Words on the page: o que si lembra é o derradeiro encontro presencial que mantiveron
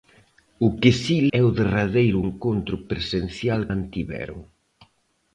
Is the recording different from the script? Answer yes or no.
yes